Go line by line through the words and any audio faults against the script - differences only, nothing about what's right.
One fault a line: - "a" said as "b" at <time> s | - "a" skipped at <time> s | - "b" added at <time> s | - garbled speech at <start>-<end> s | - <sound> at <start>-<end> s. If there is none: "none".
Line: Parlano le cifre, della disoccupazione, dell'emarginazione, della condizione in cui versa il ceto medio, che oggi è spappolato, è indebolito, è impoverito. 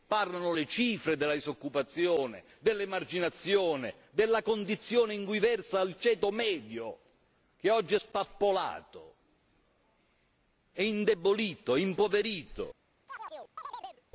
- chirp at 13.1-14.0 s